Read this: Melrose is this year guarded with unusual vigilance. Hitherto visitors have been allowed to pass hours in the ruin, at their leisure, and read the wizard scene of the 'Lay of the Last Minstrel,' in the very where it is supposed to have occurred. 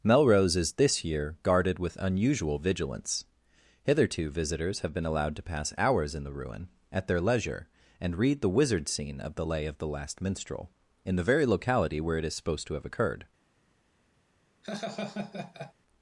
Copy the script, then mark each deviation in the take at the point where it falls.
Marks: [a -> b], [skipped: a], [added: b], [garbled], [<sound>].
Melrose is this year guarded with unusual vigilance. Hitherto visitors have been allowed to pass hours in the ruin, at their leisure, and read the wizard scene of the 'Lay of the Last Minstrel,' in the very [added: locality] where it is supposed to have occurred. [laugh]